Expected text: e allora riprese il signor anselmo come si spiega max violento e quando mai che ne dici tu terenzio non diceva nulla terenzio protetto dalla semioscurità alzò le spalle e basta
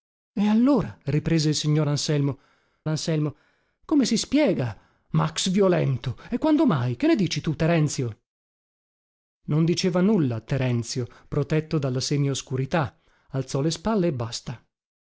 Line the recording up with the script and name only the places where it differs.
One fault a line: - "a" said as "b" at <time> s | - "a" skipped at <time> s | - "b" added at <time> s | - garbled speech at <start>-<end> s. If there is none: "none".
- "anselmo" added at 2.9 s